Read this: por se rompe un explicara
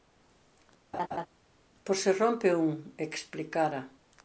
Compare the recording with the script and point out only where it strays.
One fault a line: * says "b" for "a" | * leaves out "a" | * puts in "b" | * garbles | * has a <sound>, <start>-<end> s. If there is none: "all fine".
* has a laugh, 0.9-1.3 s